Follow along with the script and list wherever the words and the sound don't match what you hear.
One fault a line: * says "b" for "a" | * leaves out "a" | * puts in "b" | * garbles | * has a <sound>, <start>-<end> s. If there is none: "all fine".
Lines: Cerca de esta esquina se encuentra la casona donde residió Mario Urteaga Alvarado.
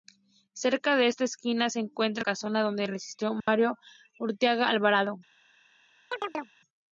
* leaves out "la"
* has a dropout, 3.4-3.5 s
* has a chirp, 6.1-6.5 s